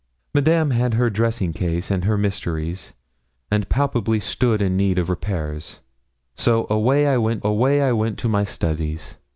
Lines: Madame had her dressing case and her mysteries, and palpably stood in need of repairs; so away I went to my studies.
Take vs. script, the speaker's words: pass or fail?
fail